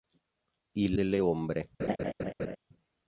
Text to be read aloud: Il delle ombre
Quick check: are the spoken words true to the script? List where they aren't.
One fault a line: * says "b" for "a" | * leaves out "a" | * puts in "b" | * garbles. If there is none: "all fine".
all fine